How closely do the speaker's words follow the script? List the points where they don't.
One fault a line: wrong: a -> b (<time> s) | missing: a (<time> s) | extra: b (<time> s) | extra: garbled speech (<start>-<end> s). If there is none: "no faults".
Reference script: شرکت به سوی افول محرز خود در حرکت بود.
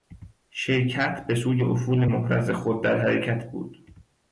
no faults